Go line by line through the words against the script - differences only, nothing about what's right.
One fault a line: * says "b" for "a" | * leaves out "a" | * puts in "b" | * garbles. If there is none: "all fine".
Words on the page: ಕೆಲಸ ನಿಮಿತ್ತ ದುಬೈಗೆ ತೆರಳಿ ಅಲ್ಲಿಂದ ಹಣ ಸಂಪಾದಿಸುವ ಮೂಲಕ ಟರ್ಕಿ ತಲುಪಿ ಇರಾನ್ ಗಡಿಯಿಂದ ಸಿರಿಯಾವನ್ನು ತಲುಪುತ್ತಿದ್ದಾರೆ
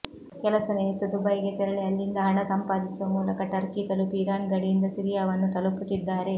all fine